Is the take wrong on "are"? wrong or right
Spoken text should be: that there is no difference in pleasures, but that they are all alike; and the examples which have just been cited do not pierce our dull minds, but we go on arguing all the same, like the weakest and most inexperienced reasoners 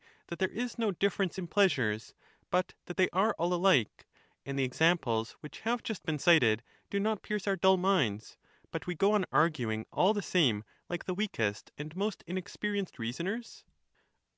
right